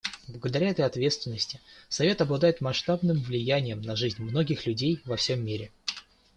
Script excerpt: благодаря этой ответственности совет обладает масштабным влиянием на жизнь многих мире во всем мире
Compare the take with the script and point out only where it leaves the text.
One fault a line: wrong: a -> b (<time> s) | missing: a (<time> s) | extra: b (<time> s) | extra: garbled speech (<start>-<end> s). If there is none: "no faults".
wrong: мире -> людей (4.7 s)